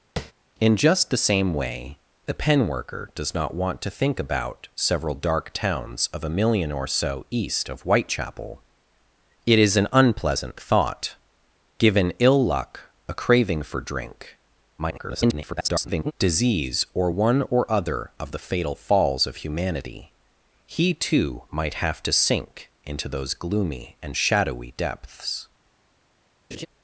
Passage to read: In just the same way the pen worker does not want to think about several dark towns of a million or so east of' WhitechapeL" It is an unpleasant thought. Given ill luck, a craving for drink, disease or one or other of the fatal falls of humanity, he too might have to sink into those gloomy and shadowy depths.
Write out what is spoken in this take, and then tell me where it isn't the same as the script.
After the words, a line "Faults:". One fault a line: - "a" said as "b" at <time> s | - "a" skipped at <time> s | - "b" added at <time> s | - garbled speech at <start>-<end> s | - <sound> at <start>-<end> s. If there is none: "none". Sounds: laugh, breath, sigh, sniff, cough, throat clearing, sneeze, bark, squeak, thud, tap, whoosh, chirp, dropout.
In just the same way the pen worker does not want to think about several dark towns of a million or so east of' WhitechapeL" It is an unpleasant thought. Given ill luck, a craving for drink, [garbled] disease or one or other of the fatal falls of humanity, he too might have to sink into those gloomy and shadowy depths.
Faults:
- tap at 0.2-0.3 s
- garbled speech at 14.8-16.1 s
- laugh at 26.5-26.7 s